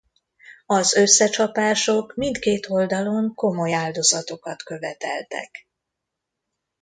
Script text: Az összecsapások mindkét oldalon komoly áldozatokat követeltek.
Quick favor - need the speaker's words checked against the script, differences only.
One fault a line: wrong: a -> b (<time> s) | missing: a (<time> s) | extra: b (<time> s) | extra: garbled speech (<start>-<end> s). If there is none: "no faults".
no faults